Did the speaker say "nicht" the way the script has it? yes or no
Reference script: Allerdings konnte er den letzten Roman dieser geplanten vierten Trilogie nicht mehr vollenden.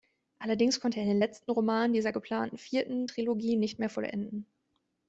yes